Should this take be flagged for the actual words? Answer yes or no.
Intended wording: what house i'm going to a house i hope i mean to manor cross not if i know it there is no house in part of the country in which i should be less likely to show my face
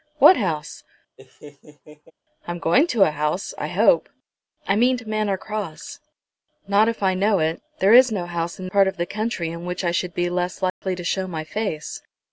no